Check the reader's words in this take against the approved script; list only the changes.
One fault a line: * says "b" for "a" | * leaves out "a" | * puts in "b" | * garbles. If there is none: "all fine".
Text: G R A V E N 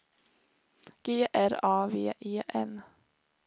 all fine